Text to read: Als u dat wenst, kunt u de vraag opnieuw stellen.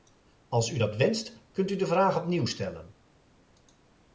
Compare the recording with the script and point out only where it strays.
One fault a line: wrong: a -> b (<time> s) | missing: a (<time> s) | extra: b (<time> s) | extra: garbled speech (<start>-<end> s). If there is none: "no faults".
no faults